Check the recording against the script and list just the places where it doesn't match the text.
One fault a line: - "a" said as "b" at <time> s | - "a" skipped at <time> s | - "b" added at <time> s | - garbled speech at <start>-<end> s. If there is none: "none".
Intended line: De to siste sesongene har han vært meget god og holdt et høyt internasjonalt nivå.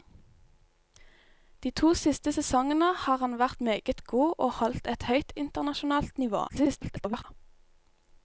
- garbled speech at 6.5-7.2 s